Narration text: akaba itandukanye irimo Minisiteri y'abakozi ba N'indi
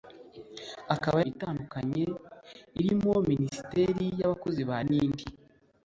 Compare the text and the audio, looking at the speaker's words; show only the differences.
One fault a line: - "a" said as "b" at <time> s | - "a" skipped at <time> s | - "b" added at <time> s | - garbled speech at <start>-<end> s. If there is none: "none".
none